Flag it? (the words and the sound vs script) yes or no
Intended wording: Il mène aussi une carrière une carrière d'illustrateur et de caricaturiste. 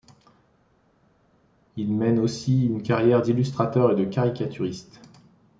yes